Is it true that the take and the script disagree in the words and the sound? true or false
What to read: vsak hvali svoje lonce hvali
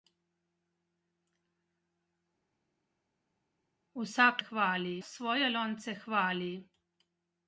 false